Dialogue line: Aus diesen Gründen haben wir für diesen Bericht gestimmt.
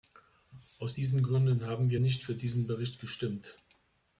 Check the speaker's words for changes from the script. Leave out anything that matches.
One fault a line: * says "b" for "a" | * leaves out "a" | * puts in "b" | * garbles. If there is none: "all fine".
* puts in "nicht"